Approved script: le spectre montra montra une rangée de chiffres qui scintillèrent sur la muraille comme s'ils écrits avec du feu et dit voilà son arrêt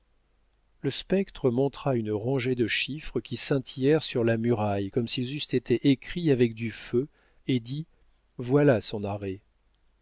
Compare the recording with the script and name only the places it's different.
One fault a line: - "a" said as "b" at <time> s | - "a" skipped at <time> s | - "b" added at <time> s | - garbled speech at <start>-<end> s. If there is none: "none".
- "montra" skipped at 1.9 s
- "eussent été" added at 5.3 s